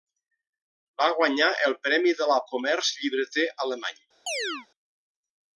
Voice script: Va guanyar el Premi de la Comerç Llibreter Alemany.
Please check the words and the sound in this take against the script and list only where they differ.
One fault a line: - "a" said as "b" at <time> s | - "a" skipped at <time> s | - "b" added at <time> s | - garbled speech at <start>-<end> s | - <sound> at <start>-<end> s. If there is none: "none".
- chirp at 4.3-4.7 s